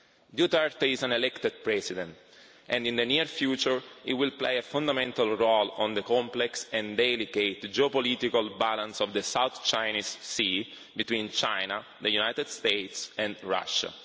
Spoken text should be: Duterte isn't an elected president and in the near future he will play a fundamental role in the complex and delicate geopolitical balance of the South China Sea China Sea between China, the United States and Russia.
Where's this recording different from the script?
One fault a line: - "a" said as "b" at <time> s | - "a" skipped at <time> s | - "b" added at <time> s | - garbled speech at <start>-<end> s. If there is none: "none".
- "isn't" said as "is" at 0.9 s
- "China Sea" skipped at 10.7 s